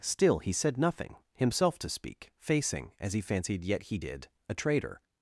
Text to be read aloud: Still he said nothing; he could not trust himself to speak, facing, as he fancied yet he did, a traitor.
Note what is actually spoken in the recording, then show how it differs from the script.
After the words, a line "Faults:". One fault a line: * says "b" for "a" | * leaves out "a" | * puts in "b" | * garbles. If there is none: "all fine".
Still he said nothing; himself to speak, facing, as he fancied yet he did, a traitor.
Faults:
* leaves out "he could not trust"